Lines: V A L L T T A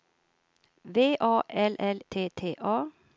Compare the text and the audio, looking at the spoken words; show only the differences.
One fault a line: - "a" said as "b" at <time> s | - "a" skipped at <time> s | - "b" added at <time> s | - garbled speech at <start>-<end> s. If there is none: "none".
none